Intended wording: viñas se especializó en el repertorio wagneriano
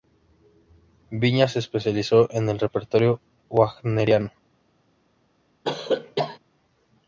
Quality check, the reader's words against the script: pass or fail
pass